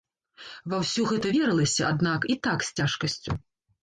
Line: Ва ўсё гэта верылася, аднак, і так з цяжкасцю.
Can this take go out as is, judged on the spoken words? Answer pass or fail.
pass